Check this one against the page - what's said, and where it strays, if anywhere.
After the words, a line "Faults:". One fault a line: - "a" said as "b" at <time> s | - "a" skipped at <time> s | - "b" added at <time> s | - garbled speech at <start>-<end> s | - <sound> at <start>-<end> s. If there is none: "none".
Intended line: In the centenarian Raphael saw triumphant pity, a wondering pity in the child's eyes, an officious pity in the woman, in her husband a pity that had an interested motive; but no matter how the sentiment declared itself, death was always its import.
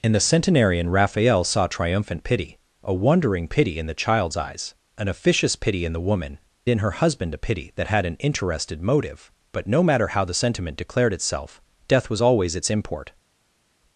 In the centenarian Raphael saw triumphant pity, a wondering pity in the child's eyes, an officious pity in the woman, in her husband a pity that had an interested motive; but no matter how the sentiment declared itself, death was always its import.
Faults:
none